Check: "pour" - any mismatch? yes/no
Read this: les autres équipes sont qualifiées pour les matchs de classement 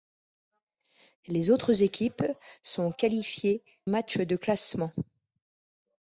yes